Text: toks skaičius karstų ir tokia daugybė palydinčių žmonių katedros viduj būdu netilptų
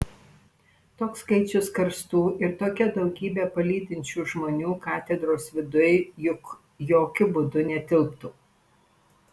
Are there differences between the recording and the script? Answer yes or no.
yes